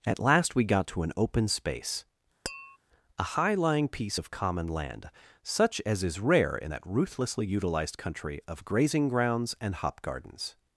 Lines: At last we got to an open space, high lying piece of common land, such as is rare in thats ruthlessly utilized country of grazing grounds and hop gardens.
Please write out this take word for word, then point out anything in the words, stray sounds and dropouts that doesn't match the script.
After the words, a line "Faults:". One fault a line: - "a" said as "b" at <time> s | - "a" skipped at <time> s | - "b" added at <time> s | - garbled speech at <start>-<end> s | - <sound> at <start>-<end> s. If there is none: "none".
At last we got to an open space, a high lying piece of common land, such as is rare in that ruthlessly utilized country of grazing grounds and hop gardens.
Faults:
- tap at 2.5-2.8 s
- "a" added at 3.2 s
- "thats" said as "that" at 6.7 s